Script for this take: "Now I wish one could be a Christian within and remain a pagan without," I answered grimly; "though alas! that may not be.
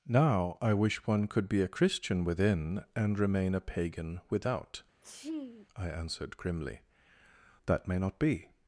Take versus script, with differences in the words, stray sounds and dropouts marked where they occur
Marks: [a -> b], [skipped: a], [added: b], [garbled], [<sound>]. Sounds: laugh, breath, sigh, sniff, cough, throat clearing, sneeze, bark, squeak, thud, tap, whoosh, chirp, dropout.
"Now I wish one could be a Christian within and remain a pagan without," [sneeze] I answered grimly; [skipped: "though alas!] that may not be.